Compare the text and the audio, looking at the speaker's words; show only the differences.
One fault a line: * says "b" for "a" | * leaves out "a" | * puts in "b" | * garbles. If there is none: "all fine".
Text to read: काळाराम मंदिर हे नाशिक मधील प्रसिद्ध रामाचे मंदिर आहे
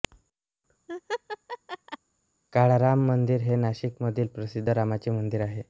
all fine